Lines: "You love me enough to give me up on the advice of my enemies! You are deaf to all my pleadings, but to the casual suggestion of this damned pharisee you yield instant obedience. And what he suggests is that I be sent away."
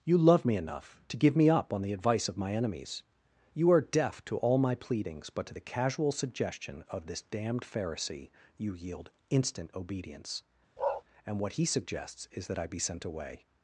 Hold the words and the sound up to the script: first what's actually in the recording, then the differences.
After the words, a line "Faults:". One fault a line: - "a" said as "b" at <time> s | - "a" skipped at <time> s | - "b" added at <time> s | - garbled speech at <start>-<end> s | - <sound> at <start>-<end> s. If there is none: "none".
"You love me enough to give me up on the advice of my enemies! You are deaf to all my pleadings, but to the casual suggestion of this damned pharisee you yield instant obedience. And what he suggests is that I be sent away."
Faults:
- bark at 10.8-11.0 s